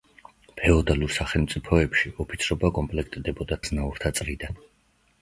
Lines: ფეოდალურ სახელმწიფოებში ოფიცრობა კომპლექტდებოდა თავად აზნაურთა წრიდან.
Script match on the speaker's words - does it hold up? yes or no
no